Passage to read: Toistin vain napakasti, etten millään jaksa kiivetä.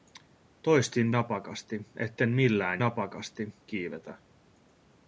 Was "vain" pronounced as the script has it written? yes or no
no